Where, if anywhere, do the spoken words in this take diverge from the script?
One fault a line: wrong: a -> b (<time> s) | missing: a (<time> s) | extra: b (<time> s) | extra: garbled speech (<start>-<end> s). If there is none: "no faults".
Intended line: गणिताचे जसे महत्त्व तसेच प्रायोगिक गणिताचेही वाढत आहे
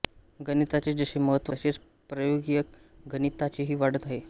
no faults